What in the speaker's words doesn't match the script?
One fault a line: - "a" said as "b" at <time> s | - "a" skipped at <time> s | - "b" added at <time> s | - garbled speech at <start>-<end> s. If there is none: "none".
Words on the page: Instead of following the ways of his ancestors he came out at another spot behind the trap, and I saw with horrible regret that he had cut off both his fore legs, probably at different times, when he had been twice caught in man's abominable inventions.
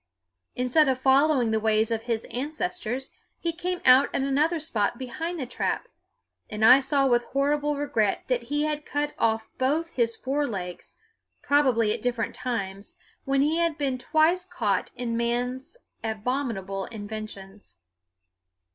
none